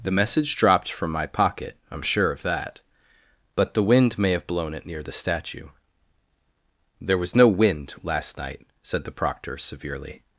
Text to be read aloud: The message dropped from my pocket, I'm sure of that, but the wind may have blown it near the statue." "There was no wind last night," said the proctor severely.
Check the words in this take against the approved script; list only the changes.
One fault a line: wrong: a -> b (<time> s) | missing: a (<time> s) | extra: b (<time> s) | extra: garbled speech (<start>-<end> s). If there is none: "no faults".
no faults